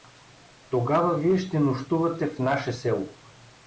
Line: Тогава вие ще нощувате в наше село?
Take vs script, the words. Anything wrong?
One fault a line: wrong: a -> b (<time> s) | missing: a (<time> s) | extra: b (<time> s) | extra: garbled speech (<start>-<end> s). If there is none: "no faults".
no faults